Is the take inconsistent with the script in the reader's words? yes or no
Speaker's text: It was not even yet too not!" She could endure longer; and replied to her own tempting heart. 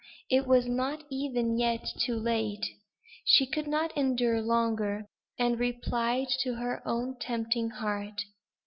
yes